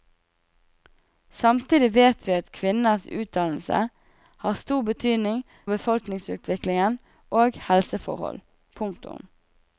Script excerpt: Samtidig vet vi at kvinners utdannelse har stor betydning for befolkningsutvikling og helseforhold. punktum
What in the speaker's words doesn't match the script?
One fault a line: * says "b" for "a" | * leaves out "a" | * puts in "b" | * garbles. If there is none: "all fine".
* leaves out "for"